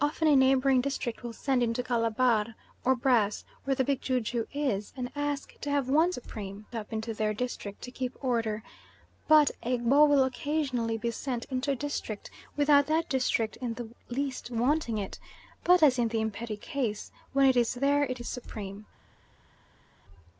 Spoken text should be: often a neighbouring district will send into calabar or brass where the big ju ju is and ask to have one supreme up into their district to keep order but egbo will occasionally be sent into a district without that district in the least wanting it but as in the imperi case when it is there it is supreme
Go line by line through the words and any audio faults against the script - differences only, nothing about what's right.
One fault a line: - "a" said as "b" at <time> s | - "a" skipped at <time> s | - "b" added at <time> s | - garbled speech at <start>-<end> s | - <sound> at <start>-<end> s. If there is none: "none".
none